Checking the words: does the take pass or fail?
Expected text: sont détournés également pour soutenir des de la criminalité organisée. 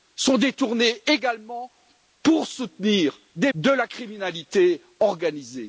pass